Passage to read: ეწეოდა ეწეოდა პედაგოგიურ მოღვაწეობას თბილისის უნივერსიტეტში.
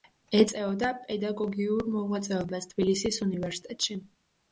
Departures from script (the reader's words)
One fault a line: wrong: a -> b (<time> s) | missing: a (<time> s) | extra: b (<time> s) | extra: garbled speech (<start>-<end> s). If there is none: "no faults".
missing: ეწეოდა (0.9 s)